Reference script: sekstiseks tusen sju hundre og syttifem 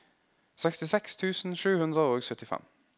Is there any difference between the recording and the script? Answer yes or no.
no